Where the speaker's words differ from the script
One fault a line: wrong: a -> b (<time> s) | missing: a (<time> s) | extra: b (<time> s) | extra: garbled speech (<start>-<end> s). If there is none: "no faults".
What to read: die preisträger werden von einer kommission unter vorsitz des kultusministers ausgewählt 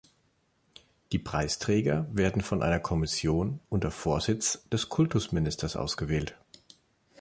no faults